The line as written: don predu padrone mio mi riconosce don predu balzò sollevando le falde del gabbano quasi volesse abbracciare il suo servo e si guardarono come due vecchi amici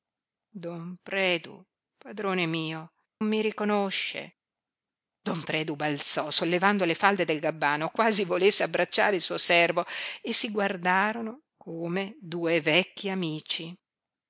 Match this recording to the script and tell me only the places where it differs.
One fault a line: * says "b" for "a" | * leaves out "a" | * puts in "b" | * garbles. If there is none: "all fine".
all fine